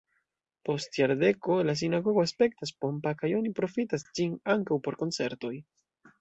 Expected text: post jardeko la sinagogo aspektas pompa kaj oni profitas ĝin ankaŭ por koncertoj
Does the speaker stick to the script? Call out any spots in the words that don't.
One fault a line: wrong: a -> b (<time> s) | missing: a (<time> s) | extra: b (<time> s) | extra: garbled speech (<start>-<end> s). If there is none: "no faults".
no faults